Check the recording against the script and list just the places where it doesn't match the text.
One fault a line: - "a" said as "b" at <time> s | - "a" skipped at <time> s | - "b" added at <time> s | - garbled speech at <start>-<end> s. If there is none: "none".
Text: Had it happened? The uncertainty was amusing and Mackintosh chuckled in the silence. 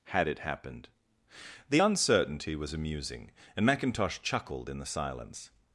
none